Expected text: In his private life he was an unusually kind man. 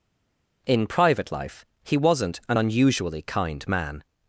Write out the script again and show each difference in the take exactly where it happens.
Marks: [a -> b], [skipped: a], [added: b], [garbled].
In [skipped: his] private life he [was -> wasn't] an unusually kind man.